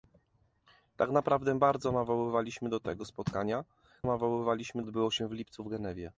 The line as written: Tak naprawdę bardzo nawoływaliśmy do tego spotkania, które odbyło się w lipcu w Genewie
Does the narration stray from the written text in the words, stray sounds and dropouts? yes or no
yes